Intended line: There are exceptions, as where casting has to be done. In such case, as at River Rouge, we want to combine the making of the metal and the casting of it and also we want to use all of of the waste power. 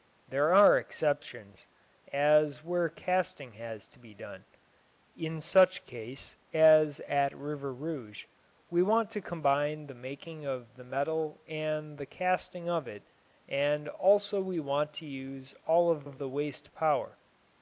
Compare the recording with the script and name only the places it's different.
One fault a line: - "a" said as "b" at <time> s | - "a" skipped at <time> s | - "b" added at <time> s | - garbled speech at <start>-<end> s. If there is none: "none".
none